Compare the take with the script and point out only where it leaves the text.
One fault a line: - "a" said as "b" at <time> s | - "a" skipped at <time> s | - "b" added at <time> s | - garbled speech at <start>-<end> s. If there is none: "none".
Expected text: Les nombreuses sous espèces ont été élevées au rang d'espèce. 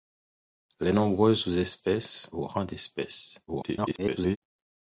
- "ont été élevées" skipped at 2.3 s
- garbled speech at 3.5-4.4 s